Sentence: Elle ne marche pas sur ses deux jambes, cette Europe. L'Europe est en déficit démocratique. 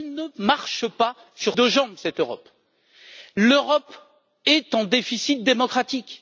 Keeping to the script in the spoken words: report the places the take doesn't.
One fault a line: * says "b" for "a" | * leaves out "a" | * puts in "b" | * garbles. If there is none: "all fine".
* leaves out "ses"